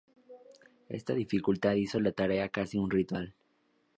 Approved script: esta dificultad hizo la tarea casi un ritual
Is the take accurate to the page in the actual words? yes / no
yes